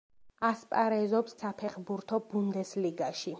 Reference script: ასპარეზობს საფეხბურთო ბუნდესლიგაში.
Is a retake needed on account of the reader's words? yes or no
no